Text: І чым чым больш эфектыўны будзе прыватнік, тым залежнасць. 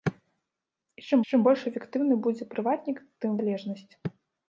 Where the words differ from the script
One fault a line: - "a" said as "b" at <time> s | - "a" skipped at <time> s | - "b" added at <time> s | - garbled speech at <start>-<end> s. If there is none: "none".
none